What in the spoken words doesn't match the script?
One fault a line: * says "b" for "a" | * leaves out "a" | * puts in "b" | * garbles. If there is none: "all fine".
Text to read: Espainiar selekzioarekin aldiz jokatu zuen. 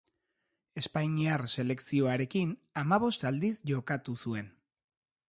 * puts in "hamabost"